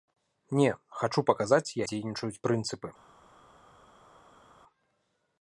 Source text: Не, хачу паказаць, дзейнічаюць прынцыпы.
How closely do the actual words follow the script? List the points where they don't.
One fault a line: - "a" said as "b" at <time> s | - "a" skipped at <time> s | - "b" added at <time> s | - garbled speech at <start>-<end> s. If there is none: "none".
none